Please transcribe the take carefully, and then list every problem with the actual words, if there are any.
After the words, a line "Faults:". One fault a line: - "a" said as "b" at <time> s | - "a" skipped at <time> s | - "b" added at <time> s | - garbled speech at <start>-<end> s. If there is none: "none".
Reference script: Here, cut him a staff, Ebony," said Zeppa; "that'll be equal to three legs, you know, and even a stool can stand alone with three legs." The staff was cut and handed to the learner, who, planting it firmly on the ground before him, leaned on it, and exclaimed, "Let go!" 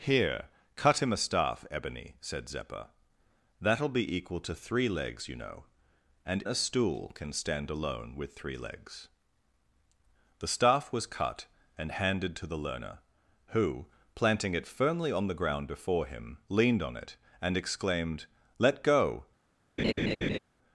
Here, cut him a staff, Ebony," said Zeppa; "that'll be equal to three legs, you know, and a stool can stand alone with three legs." The staff was cut and handed to the learner, who, planting it firmly on the ground before him, leaned on it, and exclaimed, "Let go!"
Faults:
- "even" skipped at 6.4 s